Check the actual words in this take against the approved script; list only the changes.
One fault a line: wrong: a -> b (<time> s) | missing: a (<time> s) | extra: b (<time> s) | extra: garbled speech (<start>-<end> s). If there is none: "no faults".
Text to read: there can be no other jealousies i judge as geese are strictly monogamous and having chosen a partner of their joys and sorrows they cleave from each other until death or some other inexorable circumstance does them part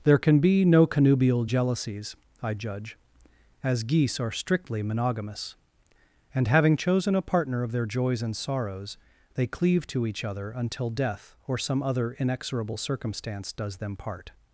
wrong: other -> connubial (0.9 s)
wrong: from -> to (9.9 s)